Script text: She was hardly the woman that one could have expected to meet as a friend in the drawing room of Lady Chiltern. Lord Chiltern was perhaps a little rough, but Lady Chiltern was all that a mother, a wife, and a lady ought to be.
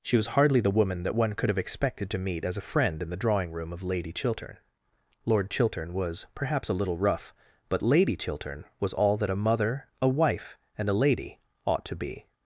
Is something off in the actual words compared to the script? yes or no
no